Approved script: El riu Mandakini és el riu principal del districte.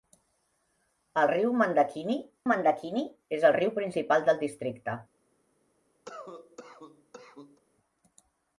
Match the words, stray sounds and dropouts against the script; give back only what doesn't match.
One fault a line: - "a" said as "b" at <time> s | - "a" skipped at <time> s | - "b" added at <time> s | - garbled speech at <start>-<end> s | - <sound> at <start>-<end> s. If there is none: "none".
- "Mandakini" added at 2.5 s
- cough at 6.1-7.6 s